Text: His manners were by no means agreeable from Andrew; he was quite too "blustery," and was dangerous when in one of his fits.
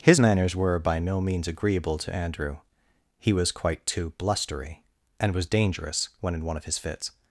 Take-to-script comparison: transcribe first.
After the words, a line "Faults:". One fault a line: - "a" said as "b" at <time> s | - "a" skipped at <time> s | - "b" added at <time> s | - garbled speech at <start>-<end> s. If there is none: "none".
His manners were by no means agreeable to Andrew; he was quite too "blustery," and was dangerous when in one of his fits.
Faults:
- "from" said as "to" at 2.0 s